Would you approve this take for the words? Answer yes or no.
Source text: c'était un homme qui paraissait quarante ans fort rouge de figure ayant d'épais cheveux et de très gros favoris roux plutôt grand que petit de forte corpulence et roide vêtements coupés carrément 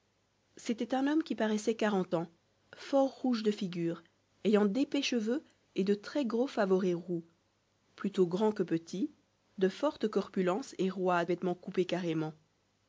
yes